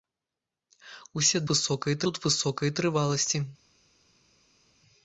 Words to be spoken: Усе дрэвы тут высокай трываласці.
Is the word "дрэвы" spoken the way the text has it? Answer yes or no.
no